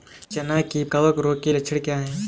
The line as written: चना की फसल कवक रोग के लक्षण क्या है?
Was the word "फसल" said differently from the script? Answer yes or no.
yes